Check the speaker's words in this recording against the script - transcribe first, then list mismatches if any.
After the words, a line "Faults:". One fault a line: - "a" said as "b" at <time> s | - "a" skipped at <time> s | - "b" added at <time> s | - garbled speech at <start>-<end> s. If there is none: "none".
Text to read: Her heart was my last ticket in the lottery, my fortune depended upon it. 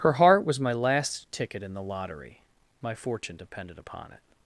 Her heart was my last ticket in the lottery, my fortune depended upon it.
Faults:
none